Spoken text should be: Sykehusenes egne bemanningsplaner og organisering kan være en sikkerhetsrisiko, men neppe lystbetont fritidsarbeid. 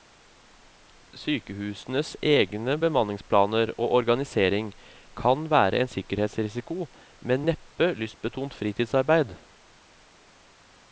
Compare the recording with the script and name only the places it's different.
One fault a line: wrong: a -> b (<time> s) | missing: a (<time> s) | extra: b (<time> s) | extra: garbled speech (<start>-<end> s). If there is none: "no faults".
no faults